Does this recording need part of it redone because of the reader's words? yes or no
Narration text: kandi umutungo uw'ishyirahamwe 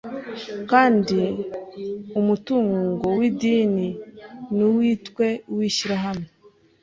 yes